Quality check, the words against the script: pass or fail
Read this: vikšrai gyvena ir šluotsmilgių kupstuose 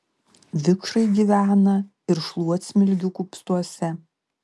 pass